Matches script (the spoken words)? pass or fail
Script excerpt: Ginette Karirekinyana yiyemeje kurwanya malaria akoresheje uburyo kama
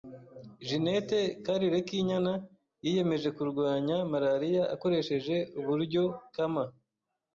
pass